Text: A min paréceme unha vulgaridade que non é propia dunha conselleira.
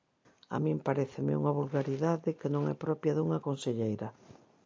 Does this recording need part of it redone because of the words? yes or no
no